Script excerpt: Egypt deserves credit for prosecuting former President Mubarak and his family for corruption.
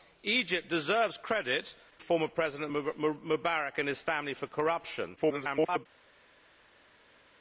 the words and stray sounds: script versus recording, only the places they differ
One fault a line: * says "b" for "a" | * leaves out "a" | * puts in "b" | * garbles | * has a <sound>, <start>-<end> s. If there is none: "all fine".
* leaves out "for prosecuting"
* garbles